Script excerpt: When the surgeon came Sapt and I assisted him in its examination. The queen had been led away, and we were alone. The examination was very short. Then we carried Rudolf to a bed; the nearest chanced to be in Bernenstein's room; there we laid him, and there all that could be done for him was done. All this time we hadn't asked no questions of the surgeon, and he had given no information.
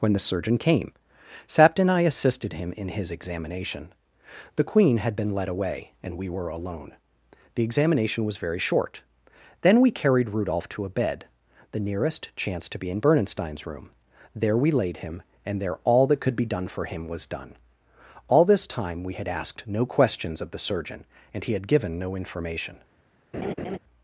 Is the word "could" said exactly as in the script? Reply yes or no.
yes